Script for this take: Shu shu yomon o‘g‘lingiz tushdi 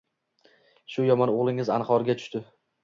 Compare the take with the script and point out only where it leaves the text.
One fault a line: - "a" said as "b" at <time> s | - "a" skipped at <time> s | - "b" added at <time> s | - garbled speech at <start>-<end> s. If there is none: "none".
- "shu" skipped at 1.1 s
- "anhorga" added at 1.8 s